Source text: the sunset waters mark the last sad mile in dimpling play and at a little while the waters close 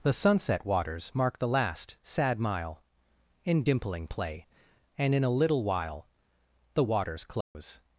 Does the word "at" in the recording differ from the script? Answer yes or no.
yes